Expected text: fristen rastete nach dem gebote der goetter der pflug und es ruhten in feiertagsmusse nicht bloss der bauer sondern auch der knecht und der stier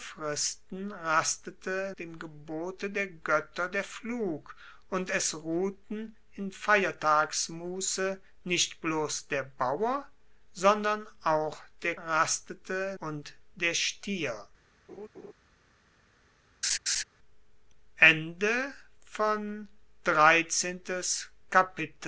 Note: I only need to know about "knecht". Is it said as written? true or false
false